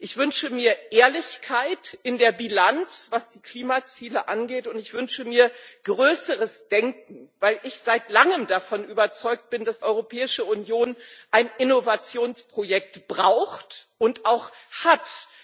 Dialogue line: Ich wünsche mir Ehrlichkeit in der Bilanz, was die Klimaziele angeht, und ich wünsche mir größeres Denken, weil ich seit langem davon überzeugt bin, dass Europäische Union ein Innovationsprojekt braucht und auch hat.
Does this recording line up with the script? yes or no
yes